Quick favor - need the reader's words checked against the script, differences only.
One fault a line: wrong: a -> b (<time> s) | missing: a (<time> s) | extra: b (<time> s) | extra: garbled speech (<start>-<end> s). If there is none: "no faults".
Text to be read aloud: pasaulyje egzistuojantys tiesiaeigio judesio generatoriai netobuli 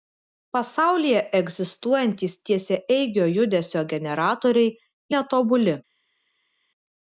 no faults